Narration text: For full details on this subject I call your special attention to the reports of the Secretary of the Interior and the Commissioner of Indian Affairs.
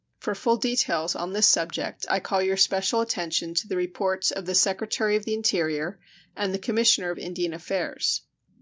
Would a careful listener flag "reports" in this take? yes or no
no